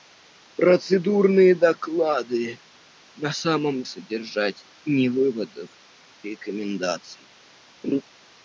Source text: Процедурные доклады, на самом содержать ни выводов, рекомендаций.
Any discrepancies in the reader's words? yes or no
no